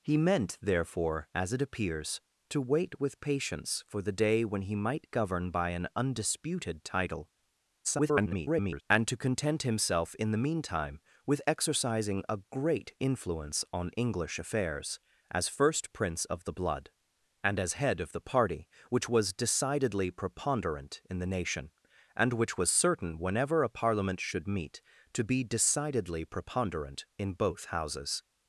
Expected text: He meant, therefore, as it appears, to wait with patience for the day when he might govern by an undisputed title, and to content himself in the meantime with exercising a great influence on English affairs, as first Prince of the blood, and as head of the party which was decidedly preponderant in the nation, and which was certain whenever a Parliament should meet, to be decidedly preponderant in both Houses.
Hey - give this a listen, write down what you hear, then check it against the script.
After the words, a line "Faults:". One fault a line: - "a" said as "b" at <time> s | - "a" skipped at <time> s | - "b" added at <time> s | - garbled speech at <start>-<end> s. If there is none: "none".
He meant, therefore, as it appears, to wait with patience for the day when he might govern by an undisputed title, [garbled] and to content himself in the meantime with exercising a great influence on English affairs, as first Prince of the blood, and as head of the party which was decidedly preponderant in the nation, and which was certain whenever a Parliament should meet, to be decidedly preponderant in both Houses.
Faults:
- garbled speech at 7.8-8.8 s